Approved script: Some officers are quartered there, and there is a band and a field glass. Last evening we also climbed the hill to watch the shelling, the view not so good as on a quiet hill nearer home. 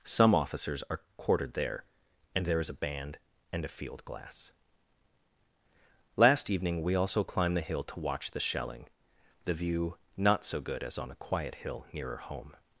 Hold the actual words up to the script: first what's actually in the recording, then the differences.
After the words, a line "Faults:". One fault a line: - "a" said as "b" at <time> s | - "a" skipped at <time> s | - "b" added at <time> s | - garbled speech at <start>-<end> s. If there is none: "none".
Some officers are quartered there, and there is a band and a field glass. Last evening we also climbed the hill to watch the shelling, the view not so good as on a quiet hill nearer home.
Faults:
none